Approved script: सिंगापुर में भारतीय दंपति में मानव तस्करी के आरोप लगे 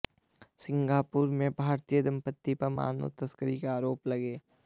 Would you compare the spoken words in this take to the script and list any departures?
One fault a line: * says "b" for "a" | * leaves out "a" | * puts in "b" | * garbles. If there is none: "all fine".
* says "पर" for "में"